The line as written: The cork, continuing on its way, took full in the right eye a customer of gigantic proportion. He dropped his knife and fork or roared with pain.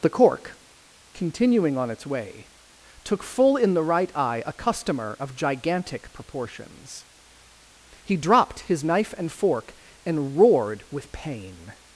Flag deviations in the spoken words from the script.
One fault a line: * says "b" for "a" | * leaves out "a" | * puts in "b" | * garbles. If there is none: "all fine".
* says "proportions" for "proportion"
* says "and" for "or"